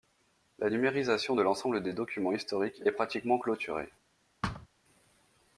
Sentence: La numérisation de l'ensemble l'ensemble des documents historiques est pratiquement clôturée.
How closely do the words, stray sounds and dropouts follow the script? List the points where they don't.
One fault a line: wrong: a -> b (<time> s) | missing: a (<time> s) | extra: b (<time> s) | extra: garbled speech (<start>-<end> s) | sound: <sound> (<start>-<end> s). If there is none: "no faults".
missing: l'ensemble (1.8 s)
sound: thud (4.4-4.7 s)